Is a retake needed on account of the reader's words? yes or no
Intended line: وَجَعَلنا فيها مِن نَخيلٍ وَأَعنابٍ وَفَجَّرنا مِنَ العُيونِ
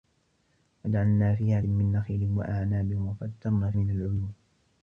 no